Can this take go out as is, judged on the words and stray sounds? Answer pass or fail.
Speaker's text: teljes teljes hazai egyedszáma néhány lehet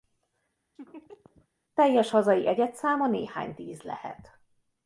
fail